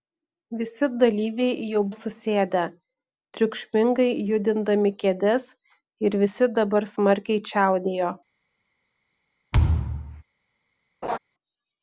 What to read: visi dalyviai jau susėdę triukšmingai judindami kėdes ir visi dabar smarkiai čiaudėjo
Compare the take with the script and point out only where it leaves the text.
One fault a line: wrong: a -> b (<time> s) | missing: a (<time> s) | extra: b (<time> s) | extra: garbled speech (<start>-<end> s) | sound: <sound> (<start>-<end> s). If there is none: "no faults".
sound: thud (9.5-10.2 s)
sound: laugh (11.0-11.2 s)